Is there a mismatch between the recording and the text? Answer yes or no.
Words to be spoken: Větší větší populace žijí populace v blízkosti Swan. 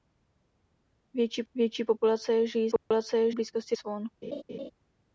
no